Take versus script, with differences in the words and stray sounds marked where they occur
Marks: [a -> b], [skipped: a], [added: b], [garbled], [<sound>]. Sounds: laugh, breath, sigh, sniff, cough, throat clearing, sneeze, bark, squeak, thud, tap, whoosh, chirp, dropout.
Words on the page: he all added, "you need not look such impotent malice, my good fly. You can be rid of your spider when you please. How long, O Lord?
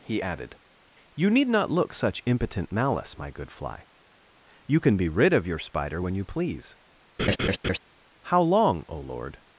he [skipped: all] added, "you need not look such impotent malice, my good fly. You can be rid of your spider when you please. [laugh] How long, O Lord?